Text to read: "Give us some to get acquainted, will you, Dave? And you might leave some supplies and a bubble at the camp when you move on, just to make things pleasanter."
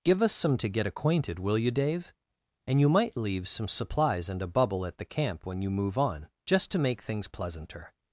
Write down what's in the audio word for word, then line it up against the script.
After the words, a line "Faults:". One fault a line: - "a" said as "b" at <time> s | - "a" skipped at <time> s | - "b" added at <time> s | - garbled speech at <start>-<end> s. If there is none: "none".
"Give us some to get acquainted, will you, Dave? And you might leave some supplies and a bubble at the camp when you move on, just to make things pleasanter."
Faults:
none